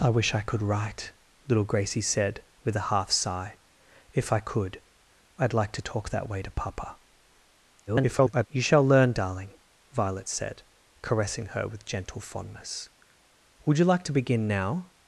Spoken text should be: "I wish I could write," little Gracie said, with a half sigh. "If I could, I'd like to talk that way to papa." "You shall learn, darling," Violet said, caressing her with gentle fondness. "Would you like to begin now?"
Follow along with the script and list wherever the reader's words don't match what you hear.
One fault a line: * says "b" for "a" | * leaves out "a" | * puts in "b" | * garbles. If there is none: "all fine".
* garbles